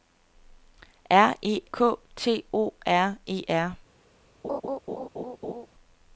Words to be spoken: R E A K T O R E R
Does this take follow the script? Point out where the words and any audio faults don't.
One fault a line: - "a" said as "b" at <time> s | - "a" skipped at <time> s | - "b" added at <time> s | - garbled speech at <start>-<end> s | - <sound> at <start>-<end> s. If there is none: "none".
- "A" skipped at 1.6 s
- laugh at 4.4-5.7 s